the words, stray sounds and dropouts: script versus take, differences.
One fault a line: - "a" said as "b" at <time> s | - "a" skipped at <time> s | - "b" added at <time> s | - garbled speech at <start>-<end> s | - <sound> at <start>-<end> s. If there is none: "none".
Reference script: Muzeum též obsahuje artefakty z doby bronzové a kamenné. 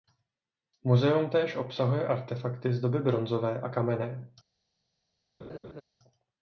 - laugh at 5.4-5.8 s